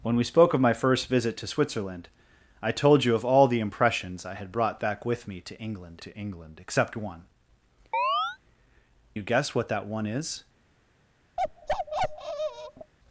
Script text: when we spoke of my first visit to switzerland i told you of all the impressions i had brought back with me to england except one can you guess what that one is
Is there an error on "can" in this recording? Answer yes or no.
yes